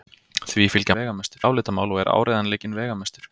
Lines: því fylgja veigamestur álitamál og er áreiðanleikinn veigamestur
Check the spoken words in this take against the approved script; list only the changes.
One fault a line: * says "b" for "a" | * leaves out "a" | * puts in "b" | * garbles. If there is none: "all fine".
all fine